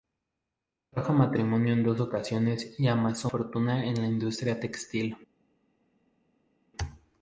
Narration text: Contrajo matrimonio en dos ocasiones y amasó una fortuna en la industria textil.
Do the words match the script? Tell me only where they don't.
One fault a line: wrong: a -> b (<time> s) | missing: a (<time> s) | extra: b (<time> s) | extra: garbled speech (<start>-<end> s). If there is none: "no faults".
missing: una (3.3 s)